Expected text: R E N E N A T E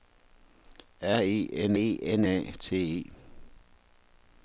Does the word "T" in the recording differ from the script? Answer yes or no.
no